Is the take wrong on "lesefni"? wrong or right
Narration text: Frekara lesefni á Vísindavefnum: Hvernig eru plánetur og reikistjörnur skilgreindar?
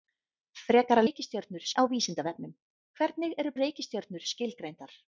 wrong